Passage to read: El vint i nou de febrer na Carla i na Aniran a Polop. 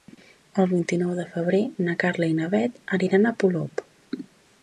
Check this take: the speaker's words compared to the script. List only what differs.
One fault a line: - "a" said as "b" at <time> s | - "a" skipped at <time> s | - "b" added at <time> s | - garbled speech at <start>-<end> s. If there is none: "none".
- "Bet" added at 2.5 s